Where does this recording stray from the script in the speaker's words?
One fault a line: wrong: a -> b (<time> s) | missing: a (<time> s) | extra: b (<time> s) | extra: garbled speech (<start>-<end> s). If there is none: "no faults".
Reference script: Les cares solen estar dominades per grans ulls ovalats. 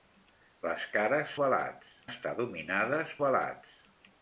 wrong: solen -> ovalats (1.4 s)
missing: per grans ulls (3.2 s)